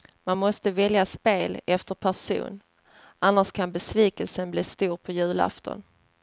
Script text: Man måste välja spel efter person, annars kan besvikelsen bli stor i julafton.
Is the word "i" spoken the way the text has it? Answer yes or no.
no